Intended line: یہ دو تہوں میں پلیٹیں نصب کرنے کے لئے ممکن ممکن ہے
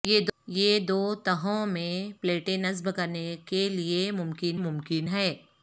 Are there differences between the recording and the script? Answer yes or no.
no